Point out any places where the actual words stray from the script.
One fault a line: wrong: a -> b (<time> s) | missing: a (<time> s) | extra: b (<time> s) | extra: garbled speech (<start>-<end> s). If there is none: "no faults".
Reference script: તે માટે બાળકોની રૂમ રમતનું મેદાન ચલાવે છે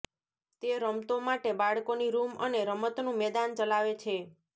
extra: રમતો (0.8 s)
extra: અને (2.4 s)